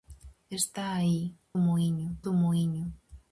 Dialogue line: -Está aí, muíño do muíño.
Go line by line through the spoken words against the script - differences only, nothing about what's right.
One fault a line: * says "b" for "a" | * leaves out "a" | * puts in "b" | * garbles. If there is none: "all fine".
all fine